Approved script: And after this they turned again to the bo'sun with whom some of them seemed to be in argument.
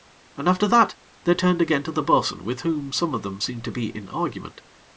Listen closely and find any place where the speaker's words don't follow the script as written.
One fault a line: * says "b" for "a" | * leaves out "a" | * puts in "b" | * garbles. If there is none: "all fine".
* says "that" for "this"